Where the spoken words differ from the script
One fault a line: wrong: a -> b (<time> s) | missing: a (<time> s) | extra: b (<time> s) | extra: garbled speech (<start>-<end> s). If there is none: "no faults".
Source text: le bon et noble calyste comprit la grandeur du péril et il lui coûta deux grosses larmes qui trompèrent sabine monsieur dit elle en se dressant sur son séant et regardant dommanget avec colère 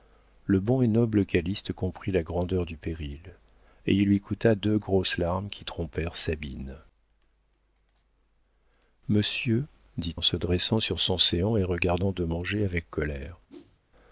missing: elle (10.2 s)